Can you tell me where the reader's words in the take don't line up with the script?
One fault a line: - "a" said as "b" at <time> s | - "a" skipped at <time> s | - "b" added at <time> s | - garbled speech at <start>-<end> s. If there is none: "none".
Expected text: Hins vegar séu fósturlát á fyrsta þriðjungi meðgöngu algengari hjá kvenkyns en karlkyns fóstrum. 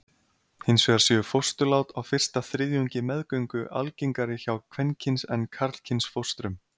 none